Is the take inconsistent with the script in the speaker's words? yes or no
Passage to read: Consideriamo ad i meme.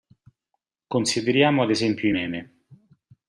yes